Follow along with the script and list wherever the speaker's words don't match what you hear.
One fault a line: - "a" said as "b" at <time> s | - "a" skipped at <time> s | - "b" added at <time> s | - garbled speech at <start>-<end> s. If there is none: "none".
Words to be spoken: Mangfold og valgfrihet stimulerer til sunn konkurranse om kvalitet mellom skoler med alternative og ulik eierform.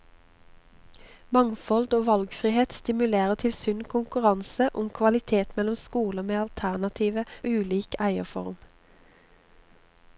none